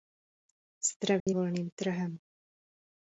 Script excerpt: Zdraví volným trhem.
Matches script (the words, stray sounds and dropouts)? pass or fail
fail